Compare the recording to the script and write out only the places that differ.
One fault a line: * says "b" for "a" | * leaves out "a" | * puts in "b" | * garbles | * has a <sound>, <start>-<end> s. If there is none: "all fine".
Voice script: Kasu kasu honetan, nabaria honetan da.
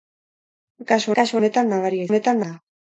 all fine